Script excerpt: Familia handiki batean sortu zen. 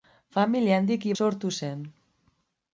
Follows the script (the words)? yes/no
no